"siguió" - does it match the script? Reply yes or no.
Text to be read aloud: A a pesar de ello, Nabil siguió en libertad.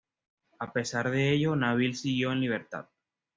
yes